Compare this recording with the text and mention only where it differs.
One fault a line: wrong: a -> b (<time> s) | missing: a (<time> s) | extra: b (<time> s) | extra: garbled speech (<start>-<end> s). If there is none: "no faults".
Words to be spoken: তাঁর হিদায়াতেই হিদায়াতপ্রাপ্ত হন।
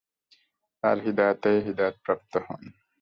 no faults